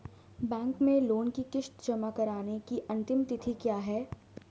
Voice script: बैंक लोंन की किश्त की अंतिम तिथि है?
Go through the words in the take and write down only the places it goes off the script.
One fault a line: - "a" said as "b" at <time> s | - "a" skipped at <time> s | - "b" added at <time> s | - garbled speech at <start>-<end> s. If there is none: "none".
- "में" added at 0.8 s
- "जमा कराने" added at 1.8 s
- "क्या" added at 3.5 s